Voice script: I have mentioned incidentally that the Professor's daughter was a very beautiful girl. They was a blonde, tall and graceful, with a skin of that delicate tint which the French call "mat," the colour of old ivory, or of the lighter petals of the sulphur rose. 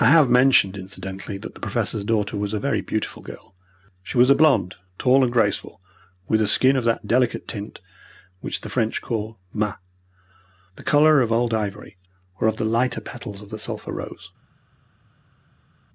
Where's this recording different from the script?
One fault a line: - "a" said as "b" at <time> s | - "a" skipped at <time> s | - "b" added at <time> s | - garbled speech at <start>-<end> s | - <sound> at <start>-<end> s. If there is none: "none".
- "They" said as "She" at 4.0 s